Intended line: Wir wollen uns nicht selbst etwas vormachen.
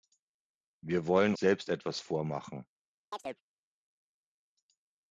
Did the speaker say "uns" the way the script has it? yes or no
no